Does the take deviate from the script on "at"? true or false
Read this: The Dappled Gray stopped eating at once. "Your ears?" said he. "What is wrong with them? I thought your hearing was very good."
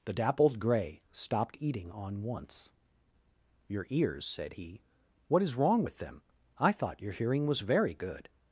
true